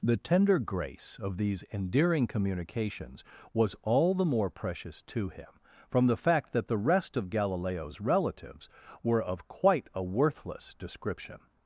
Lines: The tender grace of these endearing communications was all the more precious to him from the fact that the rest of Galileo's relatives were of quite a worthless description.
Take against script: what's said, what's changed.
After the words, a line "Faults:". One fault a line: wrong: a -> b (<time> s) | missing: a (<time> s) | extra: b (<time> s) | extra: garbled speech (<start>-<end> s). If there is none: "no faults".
The tender grace of these endearing communications was all the more precious to him from the fact that the rest of Galileo's relatives were of quite a worthless description.
Faults:
no faults